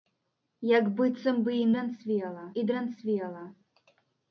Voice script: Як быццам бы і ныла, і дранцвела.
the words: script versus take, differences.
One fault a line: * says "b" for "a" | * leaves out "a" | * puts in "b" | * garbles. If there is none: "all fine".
* says "дранцвела" for "ныла"